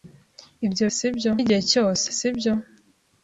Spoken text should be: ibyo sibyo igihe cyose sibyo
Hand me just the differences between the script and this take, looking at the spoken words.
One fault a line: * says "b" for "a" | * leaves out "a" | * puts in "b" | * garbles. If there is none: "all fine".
all fine